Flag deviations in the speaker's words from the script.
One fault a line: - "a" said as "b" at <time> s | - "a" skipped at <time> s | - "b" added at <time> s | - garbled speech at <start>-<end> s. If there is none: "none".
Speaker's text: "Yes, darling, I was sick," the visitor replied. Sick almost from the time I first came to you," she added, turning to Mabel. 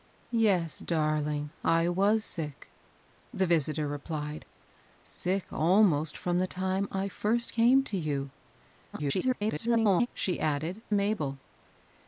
- garbled speech at 8.9-10.1 s
- "turning to" skipped at 10.8 s